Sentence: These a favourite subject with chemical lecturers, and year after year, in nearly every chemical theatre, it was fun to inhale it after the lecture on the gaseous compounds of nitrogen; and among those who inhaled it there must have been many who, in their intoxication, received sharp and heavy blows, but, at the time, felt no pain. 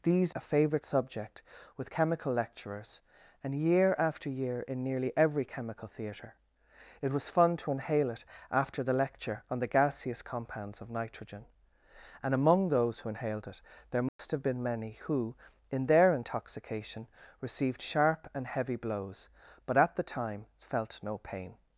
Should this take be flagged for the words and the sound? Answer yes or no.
yes